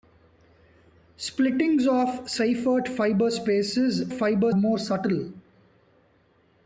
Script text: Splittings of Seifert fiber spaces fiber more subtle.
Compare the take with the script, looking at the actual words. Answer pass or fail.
pass